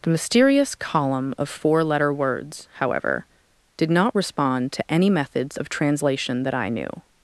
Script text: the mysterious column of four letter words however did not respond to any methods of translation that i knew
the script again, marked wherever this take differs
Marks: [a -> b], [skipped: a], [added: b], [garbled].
the mysterious column of four letter words however did not respond to any methods of translation that i knew